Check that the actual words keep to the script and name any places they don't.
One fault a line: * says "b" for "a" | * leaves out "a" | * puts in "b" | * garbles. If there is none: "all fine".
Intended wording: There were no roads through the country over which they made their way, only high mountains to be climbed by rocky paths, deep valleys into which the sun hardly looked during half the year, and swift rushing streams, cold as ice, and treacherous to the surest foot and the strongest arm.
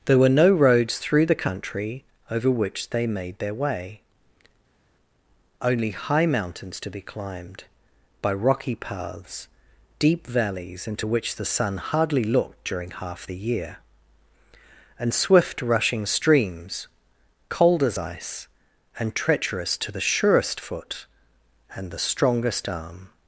all fine